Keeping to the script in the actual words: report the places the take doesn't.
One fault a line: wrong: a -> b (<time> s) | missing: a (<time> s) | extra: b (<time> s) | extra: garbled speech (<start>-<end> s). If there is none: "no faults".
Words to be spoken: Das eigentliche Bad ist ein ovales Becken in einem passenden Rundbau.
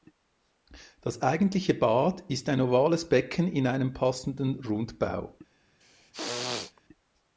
no faults